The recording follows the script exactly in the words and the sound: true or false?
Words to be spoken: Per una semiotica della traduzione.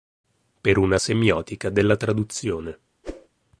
false